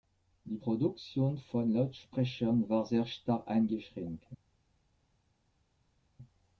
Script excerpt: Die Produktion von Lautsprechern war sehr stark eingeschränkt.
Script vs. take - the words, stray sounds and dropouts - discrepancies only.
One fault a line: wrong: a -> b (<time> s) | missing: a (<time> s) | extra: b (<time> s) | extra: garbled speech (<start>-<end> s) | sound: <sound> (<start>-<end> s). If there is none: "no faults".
no faults